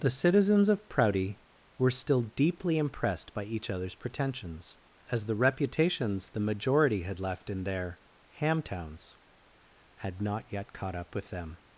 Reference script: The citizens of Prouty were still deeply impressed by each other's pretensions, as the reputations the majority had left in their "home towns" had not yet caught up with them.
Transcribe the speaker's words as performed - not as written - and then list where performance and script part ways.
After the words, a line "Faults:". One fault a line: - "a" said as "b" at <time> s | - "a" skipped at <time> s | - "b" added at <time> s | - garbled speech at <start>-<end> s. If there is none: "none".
The citizens of Prouty were still deeply impressed by each other's pretensions, as the reputations the majority had left in their "ham towns" had not yet caught up with them.
Faults:
- "home" said as "ham" at 8.3 s